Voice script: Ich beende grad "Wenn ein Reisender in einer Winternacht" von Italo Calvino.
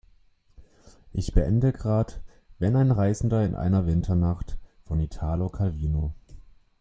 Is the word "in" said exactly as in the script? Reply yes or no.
yes